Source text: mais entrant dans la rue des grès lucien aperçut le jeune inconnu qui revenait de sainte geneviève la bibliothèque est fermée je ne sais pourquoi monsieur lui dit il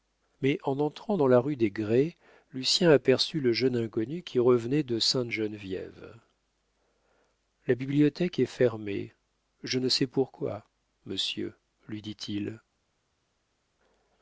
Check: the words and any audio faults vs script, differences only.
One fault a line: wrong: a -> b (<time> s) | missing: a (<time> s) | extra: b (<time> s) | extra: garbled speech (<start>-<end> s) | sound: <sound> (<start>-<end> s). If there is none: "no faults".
extra: en (0.6 s)